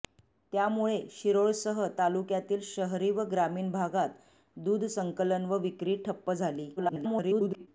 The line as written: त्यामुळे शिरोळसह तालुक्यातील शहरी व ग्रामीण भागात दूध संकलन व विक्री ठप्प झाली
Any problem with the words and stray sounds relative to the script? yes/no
yes